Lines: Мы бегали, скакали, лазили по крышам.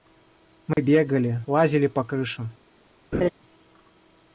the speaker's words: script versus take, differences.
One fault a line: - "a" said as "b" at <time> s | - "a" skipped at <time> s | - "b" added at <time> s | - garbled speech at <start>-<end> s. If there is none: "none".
- "скакали" skipped at 1.4 s